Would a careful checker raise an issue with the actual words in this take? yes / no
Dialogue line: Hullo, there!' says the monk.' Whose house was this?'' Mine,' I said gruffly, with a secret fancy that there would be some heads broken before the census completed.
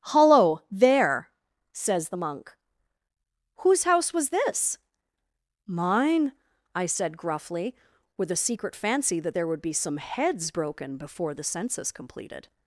no